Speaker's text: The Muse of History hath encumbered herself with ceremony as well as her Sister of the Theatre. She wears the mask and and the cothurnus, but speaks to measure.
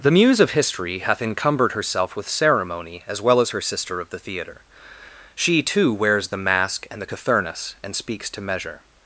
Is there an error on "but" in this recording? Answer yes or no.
yes